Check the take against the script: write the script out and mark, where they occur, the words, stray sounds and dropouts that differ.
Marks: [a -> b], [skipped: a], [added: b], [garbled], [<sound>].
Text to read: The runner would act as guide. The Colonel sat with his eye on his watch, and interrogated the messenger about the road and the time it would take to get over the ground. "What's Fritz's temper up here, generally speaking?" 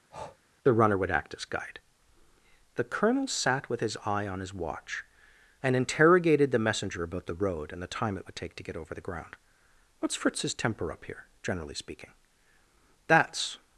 [breath] The runner would act as guide. The Colonel sat with his eye on his watch, and interrogated the messenger about the road and the time it would take to get over the ground. "What's Fritz's temper up here, generally speaking?" [added: That's]